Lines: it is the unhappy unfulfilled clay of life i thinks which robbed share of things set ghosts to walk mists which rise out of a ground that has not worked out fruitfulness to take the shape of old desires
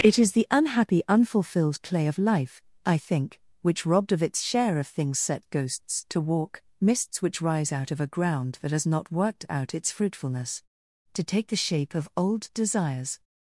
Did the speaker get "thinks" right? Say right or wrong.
wrong